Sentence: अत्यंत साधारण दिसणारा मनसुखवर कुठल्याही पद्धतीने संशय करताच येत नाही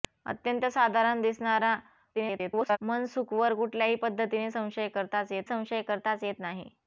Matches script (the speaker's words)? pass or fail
fail